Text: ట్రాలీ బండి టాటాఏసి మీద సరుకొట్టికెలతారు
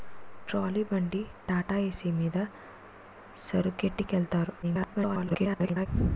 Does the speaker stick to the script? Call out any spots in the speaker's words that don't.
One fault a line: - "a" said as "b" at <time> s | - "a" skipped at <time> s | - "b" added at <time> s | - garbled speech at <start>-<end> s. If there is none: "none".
- garbled speech at 4.6-5.9 s